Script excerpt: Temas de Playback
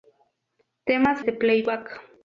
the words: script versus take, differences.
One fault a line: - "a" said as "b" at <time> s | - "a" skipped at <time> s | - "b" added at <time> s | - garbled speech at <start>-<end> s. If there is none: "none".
none